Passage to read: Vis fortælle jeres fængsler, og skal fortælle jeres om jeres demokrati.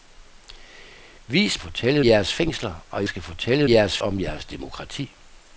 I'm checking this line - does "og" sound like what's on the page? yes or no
yes